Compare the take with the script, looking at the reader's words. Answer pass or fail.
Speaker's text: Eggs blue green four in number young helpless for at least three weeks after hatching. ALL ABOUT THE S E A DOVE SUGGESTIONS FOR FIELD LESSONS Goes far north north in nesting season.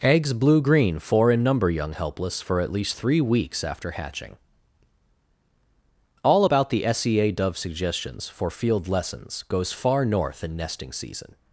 fail